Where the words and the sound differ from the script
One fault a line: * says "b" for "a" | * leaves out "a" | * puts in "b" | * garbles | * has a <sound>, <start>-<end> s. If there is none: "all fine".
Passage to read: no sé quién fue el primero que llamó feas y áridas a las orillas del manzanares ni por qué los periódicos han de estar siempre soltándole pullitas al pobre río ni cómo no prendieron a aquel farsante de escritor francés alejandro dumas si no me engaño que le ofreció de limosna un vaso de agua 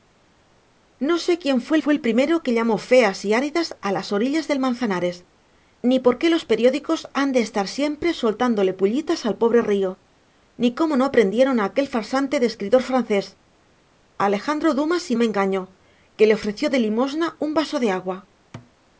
* puts in "fue"
* leaves out "no"
* has a thud, 18.5-18.7 s